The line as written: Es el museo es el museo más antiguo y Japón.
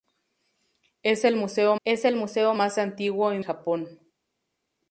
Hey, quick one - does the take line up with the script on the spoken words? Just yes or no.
yes